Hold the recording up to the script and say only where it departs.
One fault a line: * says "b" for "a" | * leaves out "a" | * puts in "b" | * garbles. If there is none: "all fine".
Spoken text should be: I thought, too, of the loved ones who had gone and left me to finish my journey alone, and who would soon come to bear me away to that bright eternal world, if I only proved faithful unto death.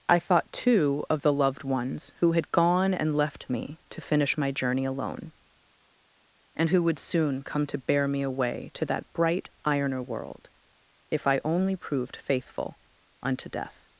* says "ironer" for "eternal"